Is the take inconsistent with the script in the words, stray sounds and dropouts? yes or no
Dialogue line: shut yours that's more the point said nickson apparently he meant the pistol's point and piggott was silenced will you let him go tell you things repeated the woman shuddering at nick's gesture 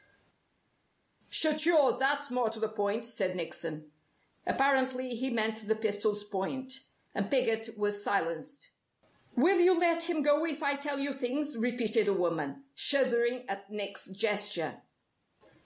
yes